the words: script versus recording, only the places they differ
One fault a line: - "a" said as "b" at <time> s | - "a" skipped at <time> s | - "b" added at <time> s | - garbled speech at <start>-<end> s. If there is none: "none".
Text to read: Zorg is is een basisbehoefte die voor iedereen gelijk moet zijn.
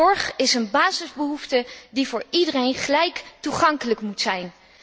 - "is" skipped at 0.5 s
- "toegankelijk" added at 3.4 s